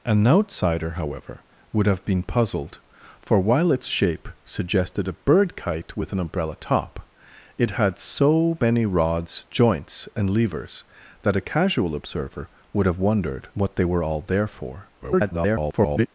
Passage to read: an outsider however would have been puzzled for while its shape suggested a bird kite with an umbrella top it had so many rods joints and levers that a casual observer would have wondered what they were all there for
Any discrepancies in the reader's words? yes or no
yes